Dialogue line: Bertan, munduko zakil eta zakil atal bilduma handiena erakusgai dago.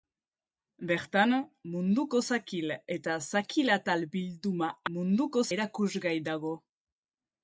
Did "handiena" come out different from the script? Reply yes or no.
yes